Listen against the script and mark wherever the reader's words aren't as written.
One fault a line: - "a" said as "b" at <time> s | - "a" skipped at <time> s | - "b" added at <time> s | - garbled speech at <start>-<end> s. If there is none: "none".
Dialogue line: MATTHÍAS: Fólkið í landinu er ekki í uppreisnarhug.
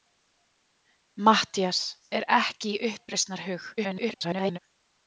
- "Fólkið í landinu" skipped at 1.8 s
- garbled speech at 3.8-4.6 s